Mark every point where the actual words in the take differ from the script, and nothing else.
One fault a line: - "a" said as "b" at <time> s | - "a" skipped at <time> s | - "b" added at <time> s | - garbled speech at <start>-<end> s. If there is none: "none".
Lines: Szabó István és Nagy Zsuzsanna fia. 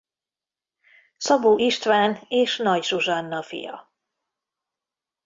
none